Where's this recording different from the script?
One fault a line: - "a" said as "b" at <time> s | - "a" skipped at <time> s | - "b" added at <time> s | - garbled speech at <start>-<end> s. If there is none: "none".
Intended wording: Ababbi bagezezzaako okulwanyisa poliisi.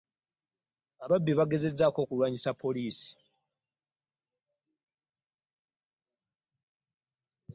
none